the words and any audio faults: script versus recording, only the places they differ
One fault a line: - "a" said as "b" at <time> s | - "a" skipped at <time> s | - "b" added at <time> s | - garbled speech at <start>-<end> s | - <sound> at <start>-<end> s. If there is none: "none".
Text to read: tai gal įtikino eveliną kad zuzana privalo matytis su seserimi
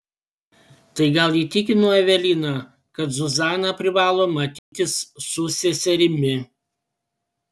- dropout at 4.6-4.7 s